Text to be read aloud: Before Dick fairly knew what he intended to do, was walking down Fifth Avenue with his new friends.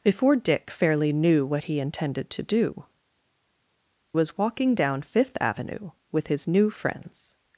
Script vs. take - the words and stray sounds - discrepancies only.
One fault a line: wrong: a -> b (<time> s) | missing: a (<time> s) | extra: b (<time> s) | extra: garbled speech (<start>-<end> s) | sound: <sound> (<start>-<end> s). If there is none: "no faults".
no faults